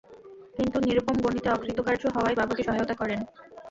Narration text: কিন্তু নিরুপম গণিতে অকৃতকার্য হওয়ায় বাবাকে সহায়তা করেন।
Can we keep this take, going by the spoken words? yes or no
yes